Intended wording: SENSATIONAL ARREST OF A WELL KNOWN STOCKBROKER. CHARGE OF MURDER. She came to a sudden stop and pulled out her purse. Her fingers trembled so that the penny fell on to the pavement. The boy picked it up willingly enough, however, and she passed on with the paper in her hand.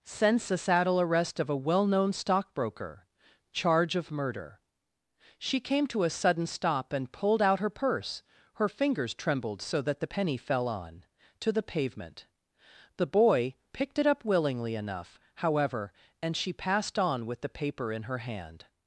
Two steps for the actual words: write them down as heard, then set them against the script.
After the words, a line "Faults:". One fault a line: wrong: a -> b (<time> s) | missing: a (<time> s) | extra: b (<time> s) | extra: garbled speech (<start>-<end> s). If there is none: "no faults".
Sense a saddle ARREST OF A WELL KNOWN STOCKBROKER. CHARGE OF MURDER. She came to a sudden stop and pulled out her purse. Her fingers trembled so that the penny fell on to the pavement. The boy picked it up willingly enough, however, and she passed on with the paper in her hand.
Faults:
wrong: SENSATIONAL -> Sense a saddle (0.0 s)